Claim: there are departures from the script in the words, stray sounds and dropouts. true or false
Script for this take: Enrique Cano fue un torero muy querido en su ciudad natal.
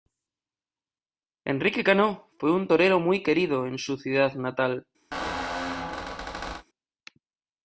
true